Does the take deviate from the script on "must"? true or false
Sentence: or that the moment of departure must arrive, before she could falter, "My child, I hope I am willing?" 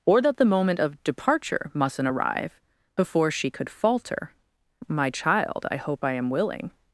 true